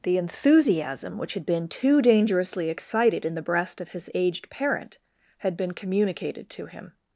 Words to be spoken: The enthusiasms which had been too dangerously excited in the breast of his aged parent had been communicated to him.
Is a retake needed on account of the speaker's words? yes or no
yes